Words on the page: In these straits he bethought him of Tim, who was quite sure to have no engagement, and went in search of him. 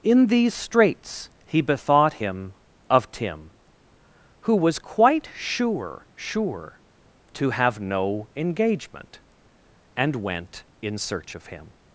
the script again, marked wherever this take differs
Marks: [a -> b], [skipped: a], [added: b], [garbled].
In these straits he bethought him of Tim, who was quite sure [added: sure] to have no engagement, and went in search of him.